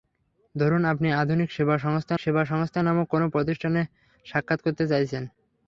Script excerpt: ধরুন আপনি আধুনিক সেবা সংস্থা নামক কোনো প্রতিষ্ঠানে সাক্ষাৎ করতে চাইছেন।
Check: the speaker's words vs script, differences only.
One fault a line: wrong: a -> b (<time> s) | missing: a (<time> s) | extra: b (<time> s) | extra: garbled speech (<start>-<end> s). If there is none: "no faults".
extra: সেবা সংস্থা (2.2 s)